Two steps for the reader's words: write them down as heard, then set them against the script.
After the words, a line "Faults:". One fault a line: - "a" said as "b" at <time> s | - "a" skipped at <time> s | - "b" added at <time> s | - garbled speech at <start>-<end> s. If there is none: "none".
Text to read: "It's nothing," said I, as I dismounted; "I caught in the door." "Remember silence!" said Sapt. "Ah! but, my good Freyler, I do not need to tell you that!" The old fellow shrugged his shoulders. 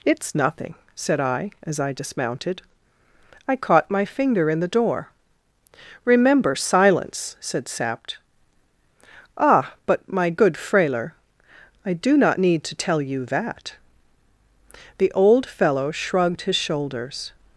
"It's nothing," said I, as I dismounted; "I caught my finger in the door." "Remember silence!" said Sapt. "Ah! but, my good Freyler, I do not need to tell you that!" The old fellow shrugged his shoulders.
Faults:
- "my finger" added at 3.9 s